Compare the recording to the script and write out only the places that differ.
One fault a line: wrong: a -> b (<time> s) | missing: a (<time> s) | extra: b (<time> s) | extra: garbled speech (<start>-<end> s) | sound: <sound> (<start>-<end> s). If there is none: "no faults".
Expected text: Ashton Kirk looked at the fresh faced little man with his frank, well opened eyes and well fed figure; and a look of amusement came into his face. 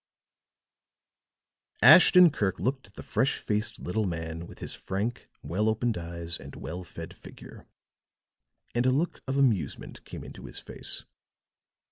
no faults